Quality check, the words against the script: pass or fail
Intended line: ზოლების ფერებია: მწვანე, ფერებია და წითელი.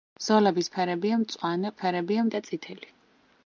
pass